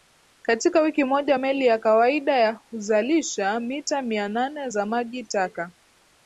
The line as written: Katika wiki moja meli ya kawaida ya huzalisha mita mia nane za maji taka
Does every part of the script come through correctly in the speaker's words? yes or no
yes